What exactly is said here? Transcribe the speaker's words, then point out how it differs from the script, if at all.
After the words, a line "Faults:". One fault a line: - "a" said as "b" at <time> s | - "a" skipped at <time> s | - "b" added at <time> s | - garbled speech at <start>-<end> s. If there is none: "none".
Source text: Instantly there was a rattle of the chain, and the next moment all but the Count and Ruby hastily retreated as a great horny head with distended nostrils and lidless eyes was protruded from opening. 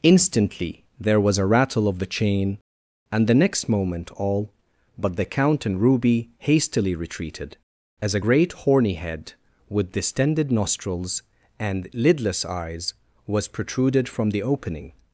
Instantly there was a rattle of the chain, and the next moment all but the Count and Ruby hastily retreated as a great horny head with distended nostrils and lidless eyes was protruded from the opening.
Faults:
- "the" added at 14.3 s